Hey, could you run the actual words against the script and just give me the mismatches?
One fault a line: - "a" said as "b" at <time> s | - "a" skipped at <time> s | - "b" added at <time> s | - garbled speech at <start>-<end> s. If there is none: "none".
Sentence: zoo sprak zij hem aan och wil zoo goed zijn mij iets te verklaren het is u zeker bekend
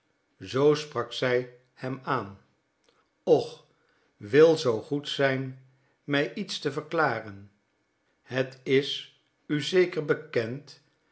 none